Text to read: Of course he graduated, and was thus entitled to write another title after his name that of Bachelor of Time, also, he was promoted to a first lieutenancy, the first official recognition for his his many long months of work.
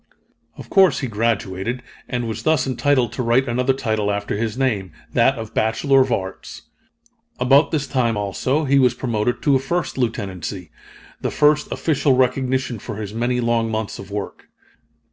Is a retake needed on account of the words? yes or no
yes